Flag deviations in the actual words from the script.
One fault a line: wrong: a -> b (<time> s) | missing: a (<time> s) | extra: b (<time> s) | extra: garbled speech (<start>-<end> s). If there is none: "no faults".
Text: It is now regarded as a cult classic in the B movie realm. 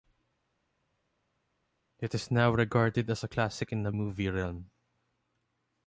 missing: cult (3.3 s)
missing: B (3.9 s)